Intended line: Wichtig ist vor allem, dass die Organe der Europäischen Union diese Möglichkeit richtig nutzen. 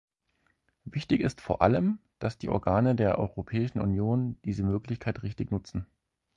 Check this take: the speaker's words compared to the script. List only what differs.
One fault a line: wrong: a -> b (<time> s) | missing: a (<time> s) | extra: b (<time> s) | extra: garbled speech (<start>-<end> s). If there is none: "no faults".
no faults